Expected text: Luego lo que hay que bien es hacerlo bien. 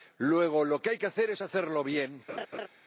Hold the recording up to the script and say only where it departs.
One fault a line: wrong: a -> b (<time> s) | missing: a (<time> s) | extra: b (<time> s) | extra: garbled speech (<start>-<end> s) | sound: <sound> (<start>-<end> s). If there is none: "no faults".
wrong: bien -> hacer (1.1 s)
sound: laugh (2.3-2.7 s)